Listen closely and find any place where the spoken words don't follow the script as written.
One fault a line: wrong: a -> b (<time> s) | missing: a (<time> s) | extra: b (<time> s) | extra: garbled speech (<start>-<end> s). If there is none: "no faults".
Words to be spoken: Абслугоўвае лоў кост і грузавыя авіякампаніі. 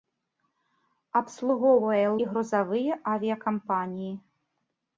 missing: лоў кост (2.0 s)